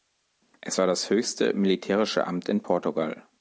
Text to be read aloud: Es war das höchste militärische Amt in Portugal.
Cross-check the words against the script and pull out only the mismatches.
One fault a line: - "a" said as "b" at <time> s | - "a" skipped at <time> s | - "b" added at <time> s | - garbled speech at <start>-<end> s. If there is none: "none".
none